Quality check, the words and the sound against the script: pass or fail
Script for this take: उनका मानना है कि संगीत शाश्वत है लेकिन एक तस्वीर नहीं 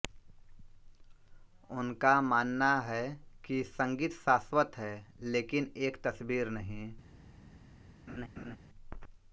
fail